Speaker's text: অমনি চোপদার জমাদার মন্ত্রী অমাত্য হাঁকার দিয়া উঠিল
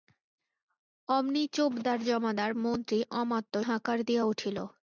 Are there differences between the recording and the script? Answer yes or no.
no